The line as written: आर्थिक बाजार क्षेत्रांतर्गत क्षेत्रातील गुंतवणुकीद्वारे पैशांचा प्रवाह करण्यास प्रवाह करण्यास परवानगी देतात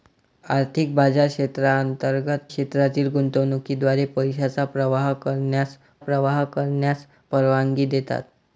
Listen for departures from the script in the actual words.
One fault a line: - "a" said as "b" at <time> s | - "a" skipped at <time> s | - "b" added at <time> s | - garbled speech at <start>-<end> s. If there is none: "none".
none